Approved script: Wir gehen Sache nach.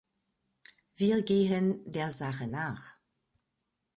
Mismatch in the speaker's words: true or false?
true